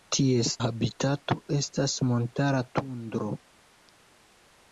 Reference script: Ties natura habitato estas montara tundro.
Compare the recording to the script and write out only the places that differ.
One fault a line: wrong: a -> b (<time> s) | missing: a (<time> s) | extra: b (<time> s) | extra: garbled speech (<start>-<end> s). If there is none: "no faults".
missing: natura (0.5 s)